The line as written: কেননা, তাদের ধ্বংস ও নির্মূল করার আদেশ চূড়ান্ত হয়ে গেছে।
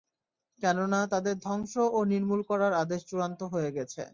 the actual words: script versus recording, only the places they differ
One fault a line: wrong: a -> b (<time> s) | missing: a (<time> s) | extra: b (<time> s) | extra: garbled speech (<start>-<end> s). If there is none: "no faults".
no faults